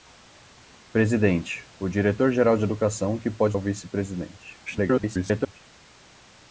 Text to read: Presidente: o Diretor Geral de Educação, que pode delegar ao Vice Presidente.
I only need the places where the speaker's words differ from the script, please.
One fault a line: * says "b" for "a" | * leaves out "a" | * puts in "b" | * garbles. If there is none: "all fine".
* leaves out "delegar"
* garbles